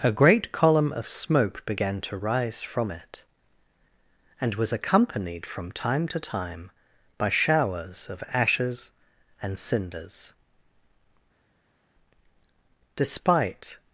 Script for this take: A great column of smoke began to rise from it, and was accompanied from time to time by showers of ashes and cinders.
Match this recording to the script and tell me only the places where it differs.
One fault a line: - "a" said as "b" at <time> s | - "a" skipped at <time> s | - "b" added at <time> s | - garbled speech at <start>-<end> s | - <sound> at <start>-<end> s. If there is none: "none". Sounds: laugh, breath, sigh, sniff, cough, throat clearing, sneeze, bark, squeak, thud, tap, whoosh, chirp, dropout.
- "Despite" added at 13.0 s